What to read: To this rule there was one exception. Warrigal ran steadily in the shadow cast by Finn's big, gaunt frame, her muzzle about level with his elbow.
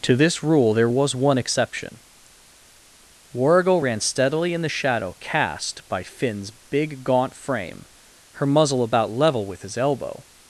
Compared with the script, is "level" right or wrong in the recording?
right